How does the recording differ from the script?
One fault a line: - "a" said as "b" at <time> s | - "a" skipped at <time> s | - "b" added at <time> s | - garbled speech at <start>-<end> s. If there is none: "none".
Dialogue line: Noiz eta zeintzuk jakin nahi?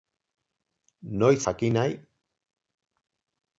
- "eta zeintzuk" skipped at 1.4 s